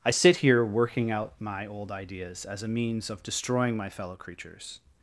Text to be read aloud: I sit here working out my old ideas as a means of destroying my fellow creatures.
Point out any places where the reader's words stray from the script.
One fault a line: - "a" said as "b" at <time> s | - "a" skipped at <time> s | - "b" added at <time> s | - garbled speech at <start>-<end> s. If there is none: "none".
none